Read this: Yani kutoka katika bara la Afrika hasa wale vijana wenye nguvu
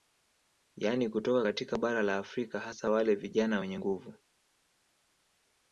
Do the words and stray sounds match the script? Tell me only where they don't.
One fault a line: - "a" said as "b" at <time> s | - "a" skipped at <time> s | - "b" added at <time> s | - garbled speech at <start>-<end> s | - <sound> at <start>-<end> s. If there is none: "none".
none